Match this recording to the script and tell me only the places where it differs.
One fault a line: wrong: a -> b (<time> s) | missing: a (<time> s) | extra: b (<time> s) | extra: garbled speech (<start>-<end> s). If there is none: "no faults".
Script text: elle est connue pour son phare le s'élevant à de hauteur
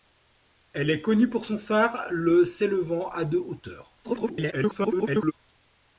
extra: garbled speech (4.0-5.3 s)